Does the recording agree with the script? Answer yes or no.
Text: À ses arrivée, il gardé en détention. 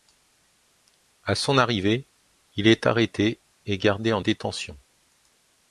no